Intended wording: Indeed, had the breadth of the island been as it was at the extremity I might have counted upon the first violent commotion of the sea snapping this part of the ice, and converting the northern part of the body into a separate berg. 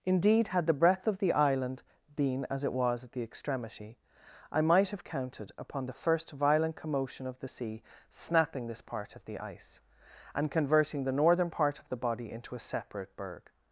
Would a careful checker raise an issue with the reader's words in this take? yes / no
no